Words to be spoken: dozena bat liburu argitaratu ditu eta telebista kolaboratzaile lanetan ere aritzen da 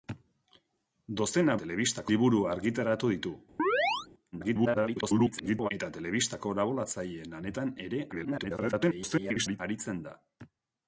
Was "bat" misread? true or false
true